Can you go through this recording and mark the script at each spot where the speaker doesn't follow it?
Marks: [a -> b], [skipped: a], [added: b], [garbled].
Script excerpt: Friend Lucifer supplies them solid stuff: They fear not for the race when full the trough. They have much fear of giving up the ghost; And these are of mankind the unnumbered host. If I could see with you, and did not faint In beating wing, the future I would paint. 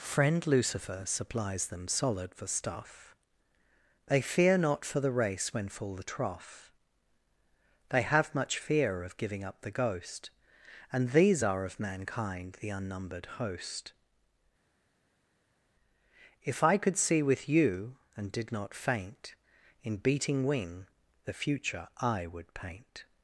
Friend Lucifer supplies them solid [added: for] stuff: They fear not for the race when full the trough. They have much fear of giving up the ghost; And these are of mankind the unnumbered host. If I could see with you, and did not faint In beating wing, the future I would paint.